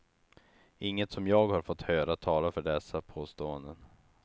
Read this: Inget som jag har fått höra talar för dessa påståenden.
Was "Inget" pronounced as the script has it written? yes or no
yes